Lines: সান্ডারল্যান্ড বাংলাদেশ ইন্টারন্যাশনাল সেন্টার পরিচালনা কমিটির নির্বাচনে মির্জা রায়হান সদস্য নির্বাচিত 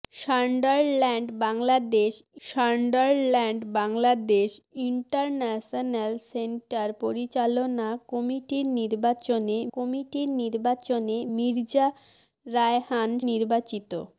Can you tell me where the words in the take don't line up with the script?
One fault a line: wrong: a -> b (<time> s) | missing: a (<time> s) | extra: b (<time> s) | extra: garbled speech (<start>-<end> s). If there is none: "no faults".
extra: সান্ডারল্যান্ড বাংলাদেশ (2.5 s)
extra: কমিটির নির্বাচনে (9.7 s)
missing: সদস্য (13.1 s)